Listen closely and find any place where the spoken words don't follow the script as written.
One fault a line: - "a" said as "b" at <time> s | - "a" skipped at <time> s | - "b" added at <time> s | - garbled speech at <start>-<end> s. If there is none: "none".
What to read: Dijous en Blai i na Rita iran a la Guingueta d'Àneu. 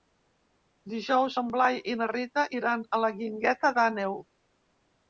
none